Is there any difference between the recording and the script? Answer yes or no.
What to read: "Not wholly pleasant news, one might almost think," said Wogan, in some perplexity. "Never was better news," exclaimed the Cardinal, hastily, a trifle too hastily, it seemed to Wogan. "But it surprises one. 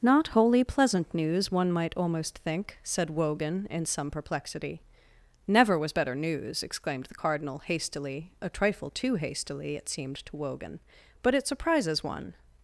no